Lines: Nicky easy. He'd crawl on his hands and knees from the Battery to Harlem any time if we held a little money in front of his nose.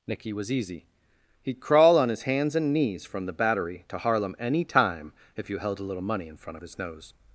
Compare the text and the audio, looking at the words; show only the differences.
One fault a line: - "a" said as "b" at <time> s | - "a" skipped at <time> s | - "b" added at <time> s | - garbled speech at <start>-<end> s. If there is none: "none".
- "was" added at 0.3 s
- "we" said as "you" at 5.5 s